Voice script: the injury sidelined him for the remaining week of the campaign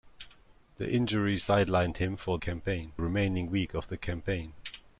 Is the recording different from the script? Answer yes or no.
yes